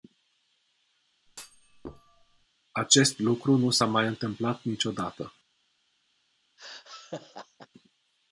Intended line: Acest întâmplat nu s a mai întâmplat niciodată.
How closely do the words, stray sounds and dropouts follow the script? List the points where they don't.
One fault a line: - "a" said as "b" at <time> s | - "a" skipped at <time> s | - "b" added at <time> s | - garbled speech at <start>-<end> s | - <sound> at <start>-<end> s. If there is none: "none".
- thud at 1.3-2.5 s
- "întâmplat" said as "lucru" at 3.2 s
- laugh at 6.6-7.7 s